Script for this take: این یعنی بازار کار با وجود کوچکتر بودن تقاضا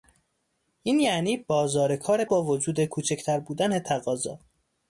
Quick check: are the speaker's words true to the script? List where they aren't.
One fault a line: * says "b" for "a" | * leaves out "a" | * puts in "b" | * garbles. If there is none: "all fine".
all fine